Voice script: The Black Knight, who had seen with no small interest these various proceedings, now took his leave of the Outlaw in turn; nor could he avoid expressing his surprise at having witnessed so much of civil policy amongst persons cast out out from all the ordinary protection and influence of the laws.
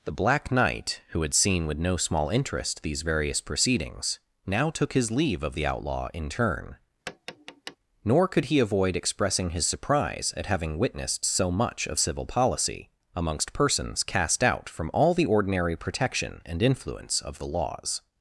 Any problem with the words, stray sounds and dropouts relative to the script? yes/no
yes